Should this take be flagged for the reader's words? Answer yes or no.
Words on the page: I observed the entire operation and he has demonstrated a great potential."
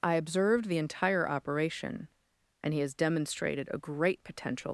no